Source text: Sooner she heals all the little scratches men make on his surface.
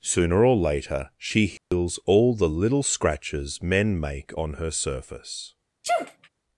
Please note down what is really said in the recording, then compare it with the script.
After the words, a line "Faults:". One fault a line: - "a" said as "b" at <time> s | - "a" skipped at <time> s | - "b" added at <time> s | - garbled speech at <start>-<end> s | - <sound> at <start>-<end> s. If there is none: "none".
Sooner or later she heals all the little scratches men make on her surface.
Faults:
- "or later" added at 0.4 s
- dropout at 1.6-1.7 s
- "his" said as "her" at 4.5 s
- sneeze at 5.8-6.3 s